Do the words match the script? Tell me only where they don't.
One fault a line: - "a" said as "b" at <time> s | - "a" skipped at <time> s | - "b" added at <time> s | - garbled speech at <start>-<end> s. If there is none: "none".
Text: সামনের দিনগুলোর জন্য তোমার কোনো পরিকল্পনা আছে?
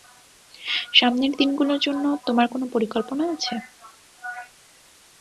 none